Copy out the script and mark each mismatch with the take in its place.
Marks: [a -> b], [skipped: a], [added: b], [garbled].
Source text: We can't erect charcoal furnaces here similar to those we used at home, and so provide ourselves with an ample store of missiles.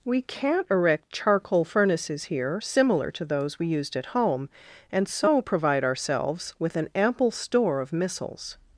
We can't erect charcoal furnaces here similar to those we used at home, and so provide ourselves with an ample store of missiles.